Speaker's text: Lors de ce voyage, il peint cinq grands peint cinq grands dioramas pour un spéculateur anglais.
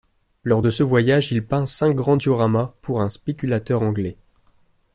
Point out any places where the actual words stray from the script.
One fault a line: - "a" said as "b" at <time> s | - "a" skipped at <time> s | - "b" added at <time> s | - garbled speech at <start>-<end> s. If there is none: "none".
- "peint cinq grands" skipped at 2.2 s